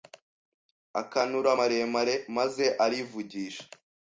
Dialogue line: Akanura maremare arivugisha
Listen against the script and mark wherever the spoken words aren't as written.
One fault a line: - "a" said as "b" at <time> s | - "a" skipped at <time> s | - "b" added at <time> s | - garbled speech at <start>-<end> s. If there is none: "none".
- "maze" added at 2.4 s